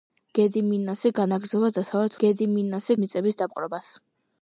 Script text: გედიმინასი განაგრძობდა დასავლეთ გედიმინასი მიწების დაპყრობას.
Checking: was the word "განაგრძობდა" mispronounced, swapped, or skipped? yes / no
no